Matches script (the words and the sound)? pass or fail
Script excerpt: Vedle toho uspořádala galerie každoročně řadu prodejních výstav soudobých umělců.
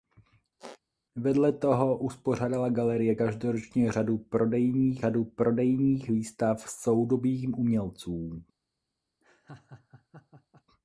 fail